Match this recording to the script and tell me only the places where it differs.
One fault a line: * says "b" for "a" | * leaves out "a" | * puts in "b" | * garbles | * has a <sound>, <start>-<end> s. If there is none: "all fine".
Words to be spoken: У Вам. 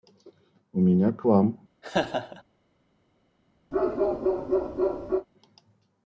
* puts in "меня к"
* has a laugh, 1.8-2.4 s
* has a bark, 3.7-5.3 s